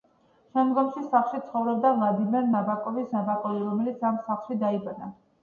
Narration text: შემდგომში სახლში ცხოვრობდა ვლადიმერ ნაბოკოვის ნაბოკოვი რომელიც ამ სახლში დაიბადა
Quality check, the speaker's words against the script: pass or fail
pass